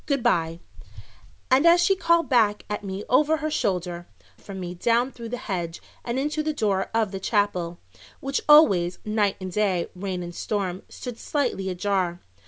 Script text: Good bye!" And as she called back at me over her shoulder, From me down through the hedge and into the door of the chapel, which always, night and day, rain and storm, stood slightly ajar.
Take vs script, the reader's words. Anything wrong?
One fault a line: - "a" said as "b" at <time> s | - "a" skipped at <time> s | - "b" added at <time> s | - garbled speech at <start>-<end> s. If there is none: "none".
none